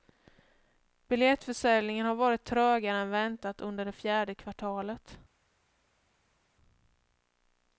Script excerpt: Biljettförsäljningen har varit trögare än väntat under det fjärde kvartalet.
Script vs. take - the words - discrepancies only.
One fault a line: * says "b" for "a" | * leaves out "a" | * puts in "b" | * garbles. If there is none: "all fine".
all fine